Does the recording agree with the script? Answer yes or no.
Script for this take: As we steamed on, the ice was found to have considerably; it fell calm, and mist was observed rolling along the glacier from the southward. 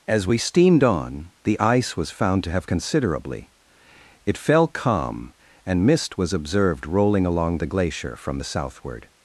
yes